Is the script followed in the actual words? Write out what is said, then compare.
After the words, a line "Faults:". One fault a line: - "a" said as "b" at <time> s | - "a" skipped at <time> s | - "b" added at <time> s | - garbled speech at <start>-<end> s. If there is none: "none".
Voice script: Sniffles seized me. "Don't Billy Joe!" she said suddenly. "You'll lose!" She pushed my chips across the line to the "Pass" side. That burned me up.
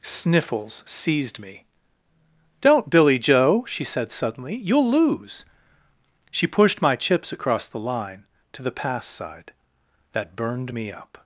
Sniffles seized me. "Don't Billy Joe!" she said suddenly. "You'll lose!" She pushed my chips across the line to the "Pass" side. That burned me up.
Faults:
none